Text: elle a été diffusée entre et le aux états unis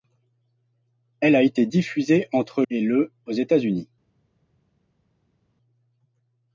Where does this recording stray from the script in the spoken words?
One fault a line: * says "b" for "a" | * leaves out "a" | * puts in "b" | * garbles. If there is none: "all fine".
all fine